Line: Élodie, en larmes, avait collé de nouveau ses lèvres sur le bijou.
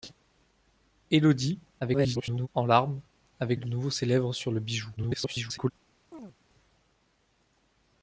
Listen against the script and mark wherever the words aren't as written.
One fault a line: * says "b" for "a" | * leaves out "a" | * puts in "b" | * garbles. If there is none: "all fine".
* garbles
* leaves out "collé"
* garbles